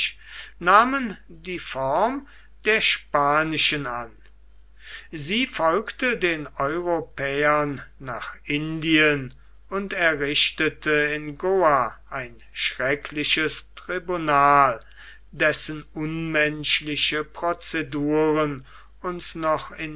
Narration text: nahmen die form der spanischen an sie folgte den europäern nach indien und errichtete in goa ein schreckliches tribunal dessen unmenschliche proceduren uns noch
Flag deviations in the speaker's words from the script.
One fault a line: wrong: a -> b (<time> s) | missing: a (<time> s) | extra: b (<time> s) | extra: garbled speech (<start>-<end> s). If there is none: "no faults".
no faults